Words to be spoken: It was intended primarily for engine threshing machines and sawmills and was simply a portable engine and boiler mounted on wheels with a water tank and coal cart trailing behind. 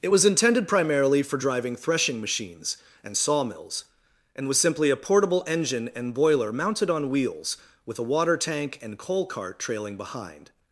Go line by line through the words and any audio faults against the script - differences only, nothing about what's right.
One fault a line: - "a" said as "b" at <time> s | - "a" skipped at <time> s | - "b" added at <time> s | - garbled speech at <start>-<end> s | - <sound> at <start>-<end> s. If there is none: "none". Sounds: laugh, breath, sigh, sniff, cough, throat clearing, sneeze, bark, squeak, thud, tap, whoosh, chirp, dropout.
- "engine" said as "driving" at 1.4 s